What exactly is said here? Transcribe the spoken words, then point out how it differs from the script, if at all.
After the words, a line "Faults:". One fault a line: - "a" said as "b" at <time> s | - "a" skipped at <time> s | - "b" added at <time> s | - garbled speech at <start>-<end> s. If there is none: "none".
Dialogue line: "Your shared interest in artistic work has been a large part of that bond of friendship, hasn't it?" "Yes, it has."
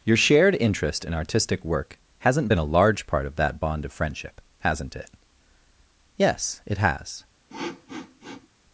"Your shared interest in artistic work hasn't been a large part of that bond of friendship, hasn't it?" "Yes, it has."
Faults:
- "has" said as "hasn't" at 2.2 s